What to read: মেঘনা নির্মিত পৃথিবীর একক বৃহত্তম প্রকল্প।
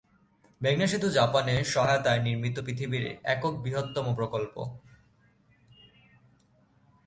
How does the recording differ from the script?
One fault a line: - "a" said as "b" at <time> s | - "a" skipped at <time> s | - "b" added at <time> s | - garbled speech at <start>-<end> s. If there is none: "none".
- "সেতু জাপানের সহায়তায়" added at 0.9 s